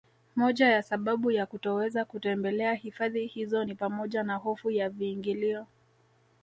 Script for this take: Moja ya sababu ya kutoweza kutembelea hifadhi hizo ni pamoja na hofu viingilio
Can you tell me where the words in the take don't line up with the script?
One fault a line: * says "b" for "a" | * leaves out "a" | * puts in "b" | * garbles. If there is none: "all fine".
* puts in "ya"